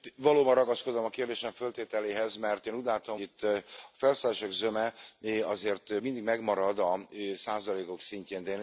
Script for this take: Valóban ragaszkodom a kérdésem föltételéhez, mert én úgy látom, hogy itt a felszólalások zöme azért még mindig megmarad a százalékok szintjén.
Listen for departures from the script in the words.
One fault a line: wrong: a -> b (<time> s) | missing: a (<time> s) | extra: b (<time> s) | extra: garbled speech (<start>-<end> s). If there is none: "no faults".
missing: hogy (3.2 s)
missing: még (6.0 s)